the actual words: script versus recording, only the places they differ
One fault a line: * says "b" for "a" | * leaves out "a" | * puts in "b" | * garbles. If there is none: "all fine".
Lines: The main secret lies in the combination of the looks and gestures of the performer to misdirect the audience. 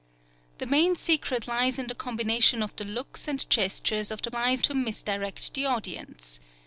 * says "lies" for "performer"